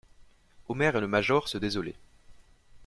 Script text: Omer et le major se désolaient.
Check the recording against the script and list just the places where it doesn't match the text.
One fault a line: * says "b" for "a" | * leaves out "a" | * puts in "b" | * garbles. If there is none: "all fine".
all fine